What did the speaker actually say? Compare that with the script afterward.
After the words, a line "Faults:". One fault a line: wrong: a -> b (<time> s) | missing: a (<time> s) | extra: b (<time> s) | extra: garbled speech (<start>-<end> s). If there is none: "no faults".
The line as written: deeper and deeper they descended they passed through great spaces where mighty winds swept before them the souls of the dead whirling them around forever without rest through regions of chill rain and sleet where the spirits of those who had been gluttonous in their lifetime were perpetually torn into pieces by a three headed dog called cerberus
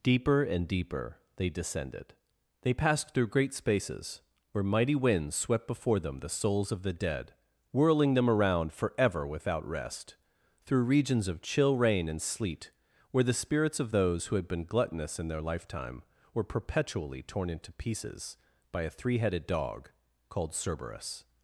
deeper and deeper they descended they passed through great spaces where mighty winds swept before them the souls of the dead whirling them around forever without rest through regions of chill rain and sleet where the spirits of those who had been gluttonous in their lifetime were perpetually torn into pieces by a three headed dog called cerberus
Faults:
no faults